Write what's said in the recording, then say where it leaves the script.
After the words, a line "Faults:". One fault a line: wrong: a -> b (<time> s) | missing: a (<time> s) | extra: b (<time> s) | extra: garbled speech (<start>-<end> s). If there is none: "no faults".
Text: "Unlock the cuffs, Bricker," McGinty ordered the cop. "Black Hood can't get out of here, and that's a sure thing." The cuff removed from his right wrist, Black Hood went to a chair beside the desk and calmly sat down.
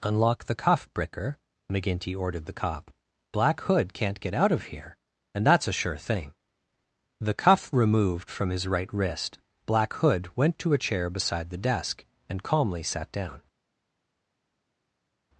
"Unlock the cuff, Bricker," McGinty ordered the cop. "Black Hood can't get out of here, and that's a sure thing." The cuff removed from his right wrist, Black Hood went to a chair beside the desk and calmly sat down.
Faults:
wrong: cuffs -> cuff (0.6 s)